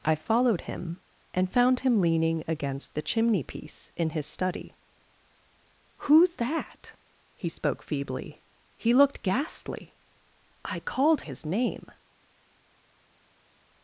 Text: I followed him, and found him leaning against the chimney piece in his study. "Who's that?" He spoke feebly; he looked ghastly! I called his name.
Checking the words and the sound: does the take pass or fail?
pass